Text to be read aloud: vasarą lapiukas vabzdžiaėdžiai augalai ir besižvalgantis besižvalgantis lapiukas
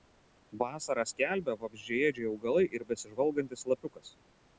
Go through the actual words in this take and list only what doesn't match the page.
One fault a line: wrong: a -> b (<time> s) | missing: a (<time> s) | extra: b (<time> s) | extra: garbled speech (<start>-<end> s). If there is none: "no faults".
wrong: lapiukas -> skelbia (1.1 s)
missing: besižvalgantis (3.7 s)